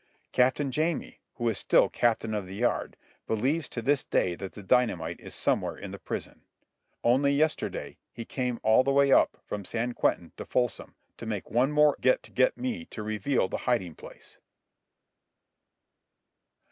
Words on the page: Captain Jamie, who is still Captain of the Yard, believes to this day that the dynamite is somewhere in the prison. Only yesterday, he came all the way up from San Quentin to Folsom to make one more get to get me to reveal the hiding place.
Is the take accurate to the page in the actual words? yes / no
yes